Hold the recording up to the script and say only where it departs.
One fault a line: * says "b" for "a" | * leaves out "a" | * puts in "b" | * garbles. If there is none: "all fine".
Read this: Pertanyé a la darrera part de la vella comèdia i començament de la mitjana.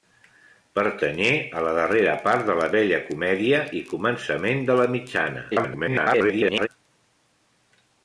* garbles